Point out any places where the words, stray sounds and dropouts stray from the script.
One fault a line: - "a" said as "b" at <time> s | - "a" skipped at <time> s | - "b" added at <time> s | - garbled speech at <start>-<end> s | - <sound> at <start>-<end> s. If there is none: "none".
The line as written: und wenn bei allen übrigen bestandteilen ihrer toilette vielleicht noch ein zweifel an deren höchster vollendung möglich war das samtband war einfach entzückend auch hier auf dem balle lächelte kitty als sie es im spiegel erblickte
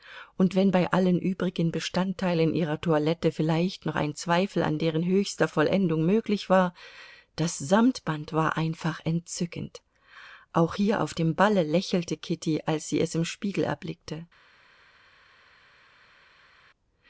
none